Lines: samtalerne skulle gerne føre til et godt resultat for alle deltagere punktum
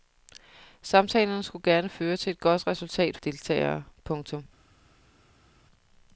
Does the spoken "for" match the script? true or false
false